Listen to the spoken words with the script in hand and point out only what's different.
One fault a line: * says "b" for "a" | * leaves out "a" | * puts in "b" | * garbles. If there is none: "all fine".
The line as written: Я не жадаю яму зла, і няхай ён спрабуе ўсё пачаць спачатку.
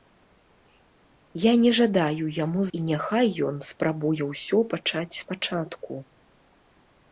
* leaves out "зла"